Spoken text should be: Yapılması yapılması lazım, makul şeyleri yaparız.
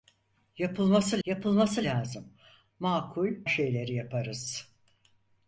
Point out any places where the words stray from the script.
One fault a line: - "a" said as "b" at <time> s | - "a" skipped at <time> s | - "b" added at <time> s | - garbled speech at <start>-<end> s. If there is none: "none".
none